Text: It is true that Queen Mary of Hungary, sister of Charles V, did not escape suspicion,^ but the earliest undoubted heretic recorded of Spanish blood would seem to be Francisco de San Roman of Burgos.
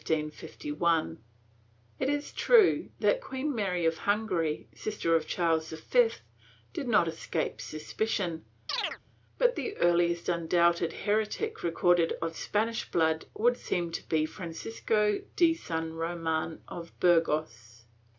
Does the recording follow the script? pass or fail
pass